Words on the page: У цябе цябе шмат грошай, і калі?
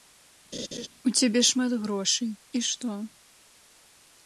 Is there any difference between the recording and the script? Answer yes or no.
yes